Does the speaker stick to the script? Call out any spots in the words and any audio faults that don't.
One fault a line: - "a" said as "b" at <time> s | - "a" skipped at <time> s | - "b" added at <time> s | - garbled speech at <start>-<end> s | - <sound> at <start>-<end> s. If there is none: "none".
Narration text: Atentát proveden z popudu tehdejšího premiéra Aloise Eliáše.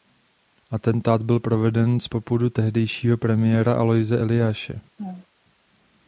- "byl" added at 1.2 s
- laugh at 5.0-5.3 s